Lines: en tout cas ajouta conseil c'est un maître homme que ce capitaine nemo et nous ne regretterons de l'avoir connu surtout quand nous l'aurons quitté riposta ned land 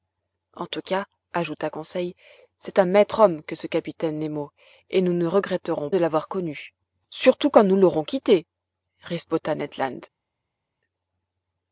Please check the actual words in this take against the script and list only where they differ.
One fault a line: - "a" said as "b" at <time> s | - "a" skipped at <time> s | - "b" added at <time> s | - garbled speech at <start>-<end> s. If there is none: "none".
none